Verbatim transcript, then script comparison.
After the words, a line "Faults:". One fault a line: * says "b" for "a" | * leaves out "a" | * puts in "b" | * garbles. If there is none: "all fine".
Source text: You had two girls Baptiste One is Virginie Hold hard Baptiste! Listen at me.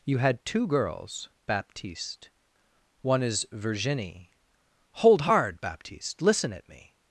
You had two girls Baptiste One is Virginie Hold hard Baptiste! Listen at me.
Faults:
all fine